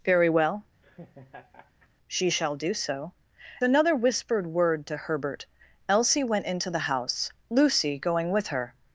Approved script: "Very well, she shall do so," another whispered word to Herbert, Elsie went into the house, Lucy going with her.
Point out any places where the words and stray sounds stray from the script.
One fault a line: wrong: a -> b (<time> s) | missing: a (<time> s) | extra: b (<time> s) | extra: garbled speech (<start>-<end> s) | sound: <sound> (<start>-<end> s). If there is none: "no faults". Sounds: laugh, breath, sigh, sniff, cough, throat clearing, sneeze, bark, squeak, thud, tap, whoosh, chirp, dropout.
sound: laugh (0.8-1.9 s)